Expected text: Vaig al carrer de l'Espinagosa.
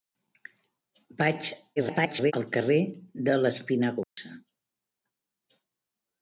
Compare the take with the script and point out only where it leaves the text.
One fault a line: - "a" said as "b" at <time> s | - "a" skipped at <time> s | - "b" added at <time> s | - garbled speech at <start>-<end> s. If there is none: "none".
- garbled speech at 1.8-2.3 s